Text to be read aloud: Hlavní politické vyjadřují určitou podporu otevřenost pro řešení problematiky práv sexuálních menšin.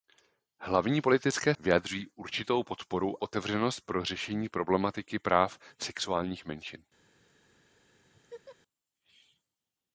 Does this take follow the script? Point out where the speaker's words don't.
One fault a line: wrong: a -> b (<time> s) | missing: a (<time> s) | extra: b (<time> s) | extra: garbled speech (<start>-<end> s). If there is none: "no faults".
no faults